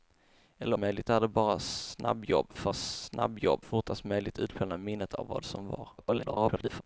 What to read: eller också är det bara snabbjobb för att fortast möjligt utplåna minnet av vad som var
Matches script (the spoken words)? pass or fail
fail